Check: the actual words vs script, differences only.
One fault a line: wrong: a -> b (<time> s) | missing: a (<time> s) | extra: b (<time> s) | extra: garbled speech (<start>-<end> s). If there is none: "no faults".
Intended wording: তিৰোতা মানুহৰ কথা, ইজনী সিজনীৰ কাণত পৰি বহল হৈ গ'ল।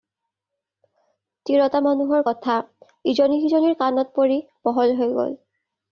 no faults